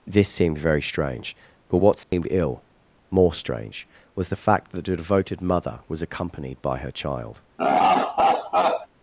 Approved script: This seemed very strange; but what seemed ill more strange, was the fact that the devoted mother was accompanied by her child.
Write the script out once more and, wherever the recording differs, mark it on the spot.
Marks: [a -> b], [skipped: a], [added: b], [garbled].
This seemed very strange; but what seemed ill more strange, was the fact that the devoted mother was accompanied by her child.